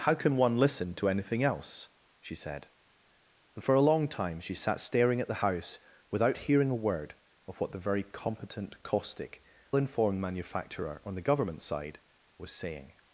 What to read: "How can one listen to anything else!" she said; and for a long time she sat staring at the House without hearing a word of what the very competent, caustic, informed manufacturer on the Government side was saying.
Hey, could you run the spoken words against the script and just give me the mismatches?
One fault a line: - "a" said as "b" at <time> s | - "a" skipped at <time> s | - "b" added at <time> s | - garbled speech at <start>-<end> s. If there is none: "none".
none